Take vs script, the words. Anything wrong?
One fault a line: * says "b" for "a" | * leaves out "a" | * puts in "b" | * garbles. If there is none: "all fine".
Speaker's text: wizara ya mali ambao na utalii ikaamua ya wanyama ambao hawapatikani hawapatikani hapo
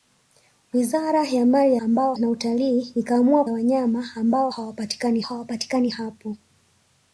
all fine